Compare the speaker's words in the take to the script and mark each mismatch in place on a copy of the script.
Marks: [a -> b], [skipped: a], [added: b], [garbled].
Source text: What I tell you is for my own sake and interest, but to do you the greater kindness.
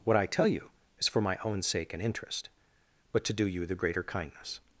What I tell you is for my own sake and interest, but to do you the greater kindness.